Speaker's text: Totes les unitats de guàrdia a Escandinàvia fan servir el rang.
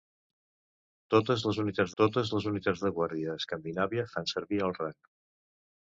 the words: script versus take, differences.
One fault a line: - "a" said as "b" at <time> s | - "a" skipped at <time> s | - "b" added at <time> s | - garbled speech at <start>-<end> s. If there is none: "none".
- "totes les unitats" added at 2.0 s